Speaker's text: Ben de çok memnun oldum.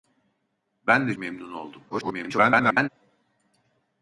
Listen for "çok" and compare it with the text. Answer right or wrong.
wrong